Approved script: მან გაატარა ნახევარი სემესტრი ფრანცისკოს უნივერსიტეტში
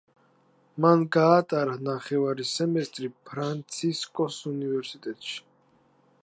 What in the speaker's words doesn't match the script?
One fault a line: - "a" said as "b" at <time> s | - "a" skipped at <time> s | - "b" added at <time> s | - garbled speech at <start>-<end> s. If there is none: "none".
none